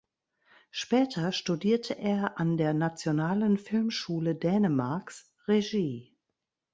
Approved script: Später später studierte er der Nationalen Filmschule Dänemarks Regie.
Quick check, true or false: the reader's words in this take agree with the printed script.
false